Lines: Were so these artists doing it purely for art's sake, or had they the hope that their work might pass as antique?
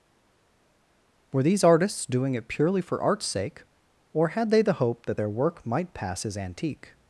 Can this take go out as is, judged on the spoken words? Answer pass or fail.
fail